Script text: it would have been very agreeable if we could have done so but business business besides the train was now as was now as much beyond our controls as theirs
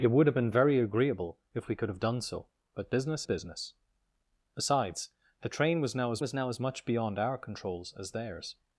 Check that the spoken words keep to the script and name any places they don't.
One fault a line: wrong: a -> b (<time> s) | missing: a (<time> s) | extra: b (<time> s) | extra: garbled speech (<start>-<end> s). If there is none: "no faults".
no faults